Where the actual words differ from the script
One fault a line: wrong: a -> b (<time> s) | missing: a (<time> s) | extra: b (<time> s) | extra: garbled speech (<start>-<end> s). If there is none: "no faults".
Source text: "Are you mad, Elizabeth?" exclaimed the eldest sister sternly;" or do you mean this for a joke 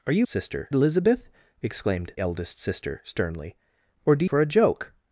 wrong: mad -> sister (0.3 s)
missing: the (2.1 s)
missing: you mean this (4.2 s)